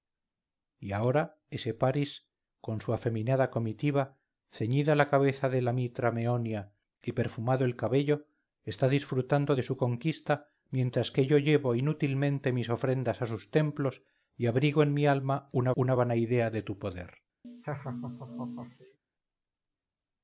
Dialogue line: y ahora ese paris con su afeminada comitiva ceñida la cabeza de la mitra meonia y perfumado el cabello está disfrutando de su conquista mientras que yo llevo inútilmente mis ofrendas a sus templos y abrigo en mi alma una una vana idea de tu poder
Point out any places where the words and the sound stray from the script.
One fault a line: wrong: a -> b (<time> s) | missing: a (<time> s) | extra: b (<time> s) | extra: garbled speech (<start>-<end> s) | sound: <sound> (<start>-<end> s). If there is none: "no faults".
sound: laugh (17.4-19.0 s)